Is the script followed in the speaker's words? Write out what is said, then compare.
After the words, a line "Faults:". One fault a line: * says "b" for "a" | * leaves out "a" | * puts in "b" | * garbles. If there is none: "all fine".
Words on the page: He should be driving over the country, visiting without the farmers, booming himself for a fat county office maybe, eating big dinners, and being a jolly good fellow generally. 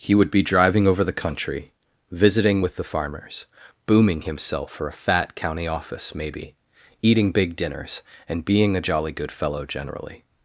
He would be driving over the country, visiting with the farmers, booming himself for a fat county office maybe, eating big dinners, and being a jolly good fellow generally.
Faults:
* says "would" for "should"
* says "with" for "without"